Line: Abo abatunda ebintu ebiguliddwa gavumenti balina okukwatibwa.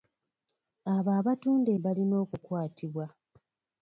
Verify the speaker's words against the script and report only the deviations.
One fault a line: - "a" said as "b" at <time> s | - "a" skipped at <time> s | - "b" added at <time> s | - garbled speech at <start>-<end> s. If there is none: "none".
- "ebintu ebiguliddwa gavumenti" skipped at 1.7 s